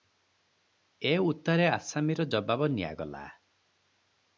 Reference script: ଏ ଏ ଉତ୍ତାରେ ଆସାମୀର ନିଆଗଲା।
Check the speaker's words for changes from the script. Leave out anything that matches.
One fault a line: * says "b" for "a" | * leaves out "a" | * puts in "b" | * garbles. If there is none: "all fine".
* leaves out "ଏ"
* puts in "ଜବାବ"